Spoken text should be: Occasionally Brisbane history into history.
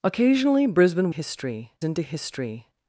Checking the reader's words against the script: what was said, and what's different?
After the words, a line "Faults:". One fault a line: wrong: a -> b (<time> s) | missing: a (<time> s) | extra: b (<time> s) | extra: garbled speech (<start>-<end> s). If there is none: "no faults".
Occasionally Brisbane history into history.
Faults:
no faults